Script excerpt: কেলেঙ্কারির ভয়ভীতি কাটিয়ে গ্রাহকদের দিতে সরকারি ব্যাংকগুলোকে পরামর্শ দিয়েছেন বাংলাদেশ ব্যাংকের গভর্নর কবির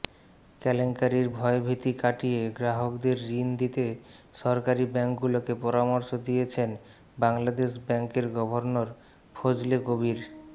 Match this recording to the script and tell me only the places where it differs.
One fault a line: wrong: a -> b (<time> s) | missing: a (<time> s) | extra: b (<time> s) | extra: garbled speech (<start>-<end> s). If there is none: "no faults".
extra: ঋণ (3.3 s)
extra: ফজলে (9.4 s)